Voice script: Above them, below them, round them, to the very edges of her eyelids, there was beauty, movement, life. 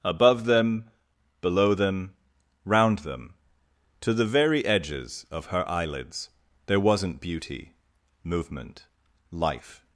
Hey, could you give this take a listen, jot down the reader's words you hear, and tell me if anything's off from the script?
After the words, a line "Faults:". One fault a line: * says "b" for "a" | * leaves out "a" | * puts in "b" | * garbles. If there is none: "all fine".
Above them, below them, round them, to the very edges of her eyelids, there wasn't beauty, movement, life.
Faults:
* says "wasn't" for "was"